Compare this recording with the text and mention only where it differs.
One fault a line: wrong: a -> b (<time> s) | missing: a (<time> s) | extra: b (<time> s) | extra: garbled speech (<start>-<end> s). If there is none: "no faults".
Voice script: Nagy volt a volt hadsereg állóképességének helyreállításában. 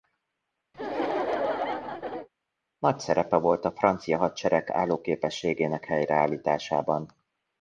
extra: szerepe (3.0 s)
wrong: volt -> francia (3.7 s)